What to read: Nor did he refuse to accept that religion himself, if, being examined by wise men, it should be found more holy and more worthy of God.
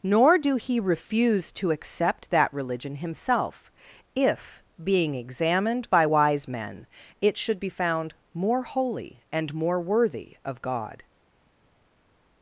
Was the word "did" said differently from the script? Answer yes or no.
yes